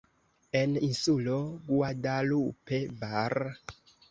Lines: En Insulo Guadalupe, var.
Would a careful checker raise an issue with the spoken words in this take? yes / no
no